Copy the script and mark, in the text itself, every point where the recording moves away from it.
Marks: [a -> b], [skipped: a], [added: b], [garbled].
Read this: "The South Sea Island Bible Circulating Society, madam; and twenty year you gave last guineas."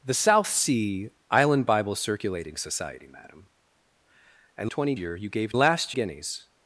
"The South Sea Island Bible Circulating Society, madam; and twenty year you gave last guineas."